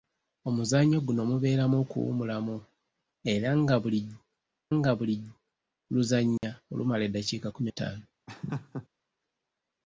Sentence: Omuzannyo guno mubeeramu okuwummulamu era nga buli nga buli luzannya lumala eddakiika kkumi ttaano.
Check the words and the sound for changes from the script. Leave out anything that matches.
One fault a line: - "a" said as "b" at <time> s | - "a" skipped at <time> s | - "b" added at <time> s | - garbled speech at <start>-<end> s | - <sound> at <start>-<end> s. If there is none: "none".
- dropout at 6.4-6.4 s
- laugh at 8.3-8.9 s